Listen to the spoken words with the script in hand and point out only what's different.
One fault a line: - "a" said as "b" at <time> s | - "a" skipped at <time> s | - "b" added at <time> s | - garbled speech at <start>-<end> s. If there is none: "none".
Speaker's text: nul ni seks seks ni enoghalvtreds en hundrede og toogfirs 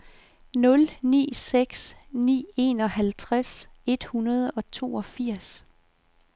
- "seks" skipped at 2.0 s
- "en" said as "et" at 3.9 s